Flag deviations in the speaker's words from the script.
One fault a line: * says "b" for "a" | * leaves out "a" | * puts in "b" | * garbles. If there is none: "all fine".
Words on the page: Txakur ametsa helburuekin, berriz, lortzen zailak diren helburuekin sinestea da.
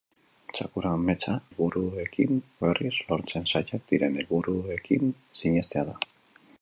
all fine